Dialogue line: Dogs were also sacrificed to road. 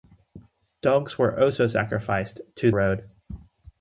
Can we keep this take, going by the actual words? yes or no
yes